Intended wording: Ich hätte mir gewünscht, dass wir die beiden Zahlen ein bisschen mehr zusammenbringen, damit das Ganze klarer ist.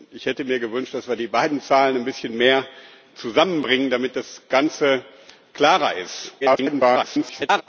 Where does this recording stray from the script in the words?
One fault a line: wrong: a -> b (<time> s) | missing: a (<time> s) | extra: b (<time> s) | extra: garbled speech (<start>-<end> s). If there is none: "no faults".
extra: garbled speech (6.4-7.6 s)